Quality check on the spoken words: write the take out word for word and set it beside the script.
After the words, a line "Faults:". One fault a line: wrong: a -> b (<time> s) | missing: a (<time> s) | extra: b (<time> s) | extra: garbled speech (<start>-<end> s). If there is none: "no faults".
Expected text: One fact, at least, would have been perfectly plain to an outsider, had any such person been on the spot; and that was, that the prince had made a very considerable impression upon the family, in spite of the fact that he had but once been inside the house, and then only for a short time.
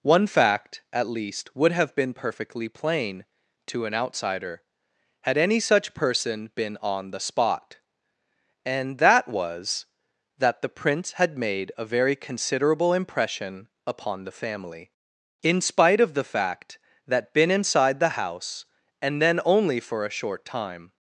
One fact, at least, would have been perfectly plain to an outsider, had any such person been on the spot; and that was, that the prince had made a very considerable impression upon the family, in spite of the fact that been inside the house, and then only for a short time.
Faults:
missing: he had but once (17.3 s)